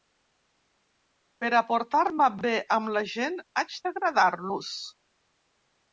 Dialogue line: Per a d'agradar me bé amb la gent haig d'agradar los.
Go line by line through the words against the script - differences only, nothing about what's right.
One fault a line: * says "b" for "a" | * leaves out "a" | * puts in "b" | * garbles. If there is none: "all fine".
* says "portar" for "d'agradar"